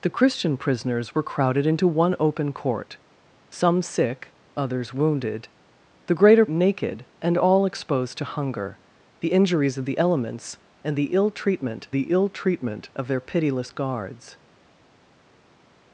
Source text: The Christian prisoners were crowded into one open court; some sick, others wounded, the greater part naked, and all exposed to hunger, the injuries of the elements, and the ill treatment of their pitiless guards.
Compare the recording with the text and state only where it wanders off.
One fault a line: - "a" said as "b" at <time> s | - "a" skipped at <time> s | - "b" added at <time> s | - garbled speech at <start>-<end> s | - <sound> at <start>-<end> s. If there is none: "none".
- "part" skipped at 6.5 s
- "the ill treatment" added at 11.9 s